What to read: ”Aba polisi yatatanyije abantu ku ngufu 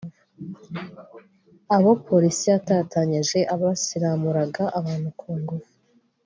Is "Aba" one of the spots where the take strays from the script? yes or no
yes